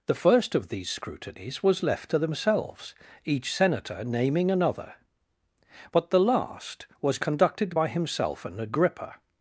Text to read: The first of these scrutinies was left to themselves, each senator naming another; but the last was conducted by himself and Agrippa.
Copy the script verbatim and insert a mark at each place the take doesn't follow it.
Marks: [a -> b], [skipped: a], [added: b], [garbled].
The first of these scrutinies was left to themselves, each senator naming another; but the last was conducted by himself and Agrippa.